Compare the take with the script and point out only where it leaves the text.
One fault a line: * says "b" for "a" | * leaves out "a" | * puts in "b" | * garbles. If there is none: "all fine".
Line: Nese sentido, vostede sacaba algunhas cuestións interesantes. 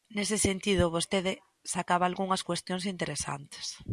all fine